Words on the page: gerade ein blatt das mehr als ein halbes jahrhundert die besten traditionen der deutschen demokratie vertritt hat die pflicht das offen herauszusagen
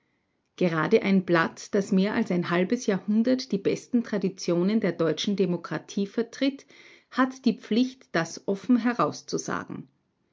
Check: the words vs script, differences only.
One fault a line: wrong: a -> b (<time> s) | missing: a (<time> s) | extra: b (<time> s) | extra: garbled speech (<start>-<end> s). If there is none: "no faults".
no faults